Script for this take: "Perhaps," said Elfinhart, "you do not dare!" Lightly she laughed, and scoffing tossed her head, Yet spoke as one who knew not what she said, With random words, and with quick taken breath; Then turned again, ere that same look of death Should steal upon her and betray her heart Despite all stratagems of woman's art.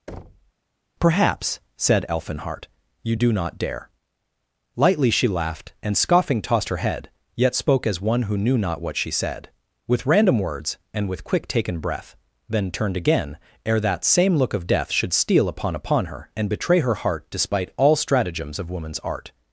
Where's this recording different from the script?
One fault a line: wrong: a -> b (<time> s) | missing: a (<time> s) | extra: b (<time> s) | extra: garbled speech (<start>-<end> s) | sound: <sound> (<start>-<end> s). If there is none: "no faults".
sound: thud (0.1-0.5 s)
extra: upon (15.8 s)